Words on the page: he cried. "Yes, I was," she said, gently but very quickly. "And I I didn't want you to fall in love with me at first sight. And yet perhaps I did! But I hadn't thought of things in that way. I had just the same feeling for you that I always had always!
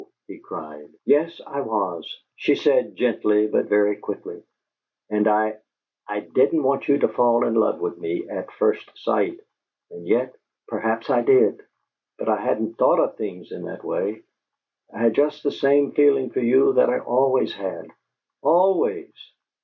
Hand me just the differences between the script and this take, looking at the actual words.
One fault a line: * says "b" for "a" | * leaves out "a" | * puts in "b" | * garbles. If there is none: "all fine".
all fine